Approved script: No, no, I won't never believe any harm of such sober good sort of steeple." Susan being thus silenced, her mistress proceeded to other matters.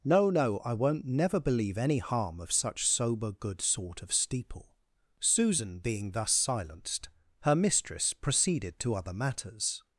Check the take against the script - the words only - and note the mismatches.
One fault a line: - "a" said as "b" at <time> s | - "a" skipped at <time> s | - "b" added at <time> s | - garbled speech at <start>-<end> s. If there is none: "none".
none